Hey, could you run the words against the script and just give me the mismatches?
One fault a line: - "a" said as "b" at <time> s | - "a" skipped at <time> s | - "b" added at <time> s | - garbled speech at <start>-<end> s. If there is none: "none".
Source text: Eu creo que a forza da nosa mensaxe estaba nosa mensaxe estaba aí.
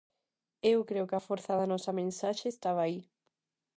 - "nosa mensaxe estaba" skipped at 2.8 s